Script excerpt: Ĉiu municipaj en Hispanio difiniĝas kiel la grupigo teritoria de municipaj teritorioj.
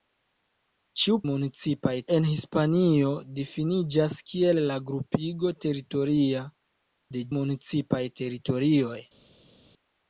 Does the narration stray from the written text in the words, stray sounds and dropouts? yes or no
no